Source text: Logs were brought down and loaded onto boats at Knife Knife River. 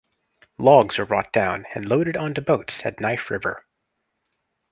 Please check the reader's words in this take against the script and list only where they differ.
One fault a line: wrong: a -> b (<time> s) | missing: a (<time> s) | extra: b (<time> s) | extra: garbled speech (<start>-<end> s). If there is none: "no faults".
missing: Knife (3.3 s)